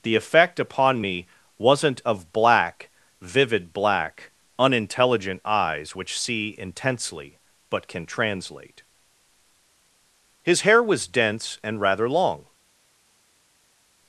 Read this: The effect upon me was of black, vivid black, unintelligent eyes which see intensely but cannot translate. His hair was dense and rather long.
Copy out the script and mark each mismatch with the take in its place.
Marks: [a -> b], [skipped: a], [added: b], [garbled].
The effect upon me [was -> wasn't] of black, vivid black, unintelligent eyes which see intensely but [cannot -> can] translate. His hair was dense and rather long.